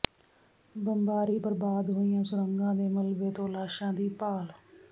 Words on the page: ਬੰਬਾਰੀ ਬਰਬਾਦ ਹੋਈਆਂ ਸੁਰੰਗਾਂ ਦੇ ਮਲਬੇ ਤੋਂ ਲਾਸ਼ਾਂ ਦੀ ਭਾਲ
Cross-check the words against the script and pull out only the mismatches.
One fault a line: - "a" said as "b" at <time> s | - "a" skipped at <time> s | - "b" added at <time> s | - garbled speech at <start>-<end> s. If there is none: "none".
none